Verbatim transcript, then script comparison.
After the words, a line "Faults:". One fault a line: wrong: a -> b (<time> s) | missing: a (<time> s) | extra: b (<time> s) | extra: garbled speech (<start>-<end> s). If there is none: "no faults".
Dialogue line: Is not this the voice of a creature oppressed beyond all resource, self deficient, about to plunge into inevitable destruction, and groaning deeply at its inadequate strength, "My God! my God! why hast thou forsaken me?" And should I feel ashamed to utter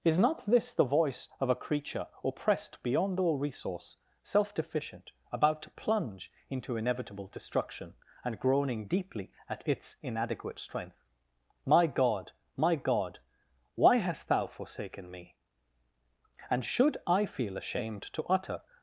Is not this the voice of a creature oppressed beyond all resource, self deficient, about to plunge into inevitable destruction, and groaning deeply at its inadequate strength, "My God! my God! why hast thou forsaken me?" And should I feel ashamed to utter
Faults:
no faults